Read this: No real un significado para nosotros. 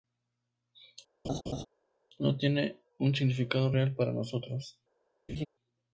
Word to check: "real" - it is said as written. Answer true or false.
false